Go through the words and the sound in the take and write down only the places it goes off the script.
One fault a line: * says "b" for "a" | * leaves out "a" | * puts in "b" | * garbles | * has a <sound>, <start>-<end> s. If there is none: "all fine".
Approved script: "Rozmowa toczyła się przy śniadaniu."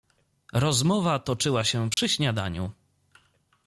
* has a dropout, 1.9-2.0 s